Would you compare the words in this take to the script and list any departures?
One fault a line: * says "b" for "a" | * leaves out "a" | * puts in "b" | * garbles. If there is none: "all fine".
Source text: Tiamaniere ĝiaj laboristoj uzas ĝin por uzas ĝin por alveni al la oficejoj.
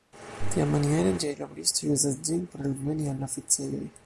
* leaves out "uzas ĝin por"